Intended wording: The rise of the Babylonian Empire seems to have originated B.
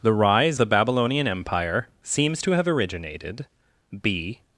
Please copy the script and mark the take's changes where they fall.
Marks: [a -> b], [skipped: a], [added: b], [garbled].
The rise [skipped: of] the Babylonian Empire seems to have originated B.